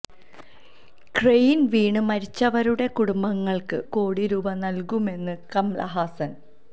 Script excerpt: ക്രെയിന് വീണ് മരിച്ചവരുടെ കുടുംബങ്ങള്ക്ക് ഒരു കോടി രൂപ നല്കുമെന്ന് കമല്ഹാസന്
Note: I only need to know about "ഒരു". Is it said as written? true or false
false